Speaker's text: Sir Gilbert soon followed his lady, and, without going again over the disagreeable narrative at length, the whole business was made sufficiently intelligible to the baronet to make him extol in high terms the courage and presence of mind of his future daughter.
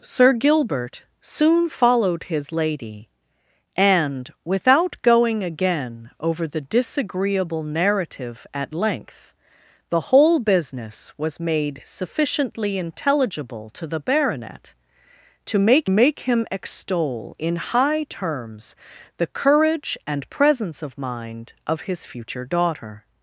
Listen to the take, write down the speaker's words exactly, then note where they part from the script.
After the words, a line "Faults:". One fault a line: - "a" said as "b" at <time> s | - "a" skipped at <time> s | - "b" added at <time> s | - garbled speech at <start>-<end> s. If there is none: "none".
Sir Gilbert soon followed his lady, and, without going again over the disagreeable narrative at length, the whole business was made sufficiently intelligible to the baronet to make make him extol in high terms the courage and presence of mind of his future daughter.
Faults:
- "make" added at 15.9 s